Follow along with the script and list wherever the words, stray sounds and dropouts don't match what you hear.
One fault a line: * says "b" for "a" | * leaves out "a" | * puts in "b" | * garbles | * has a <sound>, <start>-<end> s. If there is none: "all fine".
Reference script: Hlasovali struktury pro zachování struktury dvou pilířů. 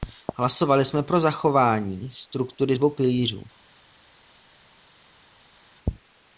* says "jsme" for "struktury"